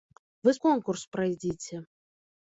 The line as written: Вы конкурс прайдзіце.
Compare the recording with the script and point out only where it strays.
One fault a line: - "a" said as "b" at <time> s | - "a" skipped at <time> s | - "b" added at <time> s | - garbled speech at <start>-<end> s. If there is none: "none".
none